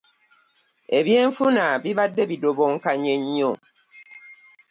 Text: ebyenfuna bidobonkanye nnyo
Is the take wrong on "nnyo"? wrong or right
right